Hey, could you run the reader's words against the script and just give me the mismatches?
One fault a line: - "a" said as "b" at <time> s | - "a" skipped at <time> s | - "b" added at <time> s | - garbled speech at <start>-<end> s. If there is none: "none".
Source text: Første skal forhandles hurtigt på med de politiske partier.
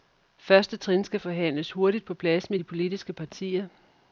- "trin" added at 0.8 s
- "plads" added at 2.1 s